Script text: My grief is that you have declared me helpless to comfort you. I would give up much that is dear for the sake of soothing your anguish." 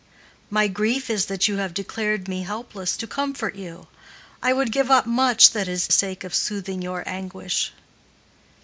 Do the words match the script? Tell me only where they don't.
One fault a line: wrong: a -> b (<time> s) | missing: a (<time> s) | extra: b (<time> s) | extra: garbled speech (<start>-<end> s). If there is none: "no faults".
missing: dear for the (5.9 s)